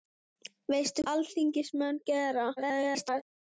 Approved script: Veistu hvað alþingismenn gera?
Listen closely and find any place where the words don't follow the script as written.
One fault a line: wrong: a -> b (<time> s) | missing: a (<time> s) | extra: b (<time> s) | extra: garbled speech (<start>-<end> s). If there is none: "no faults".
missing: hvað (1.1 s)
extra: garbled speech (2.6-3.2 s)